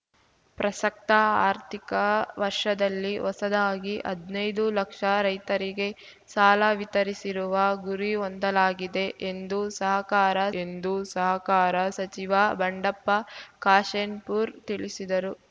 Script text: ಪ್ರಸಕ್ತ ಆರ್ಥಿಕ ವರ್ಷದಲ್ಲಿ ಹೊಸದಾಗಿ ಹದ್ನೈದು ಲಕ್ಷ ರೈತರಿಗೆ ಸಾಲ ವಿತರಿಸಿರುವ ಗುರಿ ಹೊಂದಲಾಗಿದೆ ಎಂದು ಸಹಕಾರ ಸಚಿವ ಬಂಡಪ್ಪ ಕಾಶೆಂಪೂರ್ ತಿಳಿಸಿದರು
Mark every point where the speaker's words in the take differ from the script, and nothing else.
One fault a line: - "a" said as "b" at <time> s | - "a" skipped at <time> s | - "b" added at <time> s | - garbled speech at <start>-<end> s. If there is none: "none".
- "ಎಂದು ಸಹಕಾರ" added at 10.6 s